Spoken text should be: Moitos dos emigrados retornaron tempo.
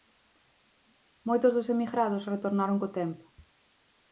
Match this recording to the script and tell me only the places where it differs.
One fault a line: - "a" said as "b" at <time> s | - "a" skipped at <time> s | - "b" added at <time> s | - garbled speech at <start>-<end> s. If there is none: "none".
- "co" added at 2.8 s